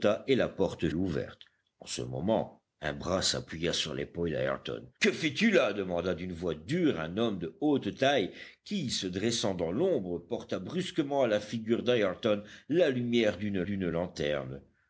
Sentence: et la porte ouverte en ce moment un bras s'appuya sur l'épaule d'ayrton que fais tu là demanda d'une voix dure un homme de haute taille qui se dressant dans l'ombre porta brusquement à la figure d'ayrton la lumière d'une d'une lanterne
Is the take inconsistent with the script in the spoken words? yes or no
no